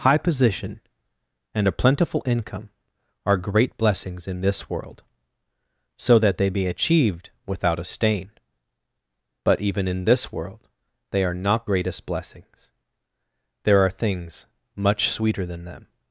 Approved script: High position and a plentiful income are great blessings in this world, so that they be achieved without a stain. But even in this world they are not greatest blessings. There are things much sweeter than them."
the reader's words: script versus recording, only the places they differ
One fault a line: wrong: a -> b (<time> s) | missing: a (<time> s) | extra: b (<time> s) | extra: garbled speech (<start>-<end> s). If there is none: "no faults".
no faults